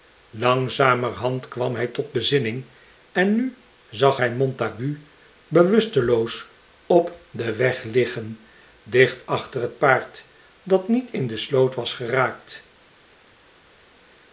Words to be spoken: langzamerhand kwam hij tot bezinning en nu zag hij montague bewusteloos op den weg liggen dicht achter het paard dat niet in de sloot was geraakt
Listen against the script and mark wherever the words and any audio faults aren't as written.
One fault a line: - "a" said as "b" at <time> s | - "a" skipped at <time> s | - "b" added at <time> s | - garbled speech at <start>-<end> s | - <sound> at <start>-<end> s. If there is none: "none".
none